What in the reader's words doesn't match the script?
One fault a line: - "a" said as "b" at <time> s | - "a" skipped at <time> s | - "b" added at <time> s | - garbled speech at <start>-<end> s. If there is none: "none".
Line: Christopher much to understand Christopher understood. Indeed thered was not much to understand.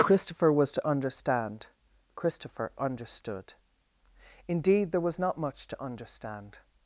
- "much" said as "was" at 0.5 s
- "thered" said as "there" at 4.9 s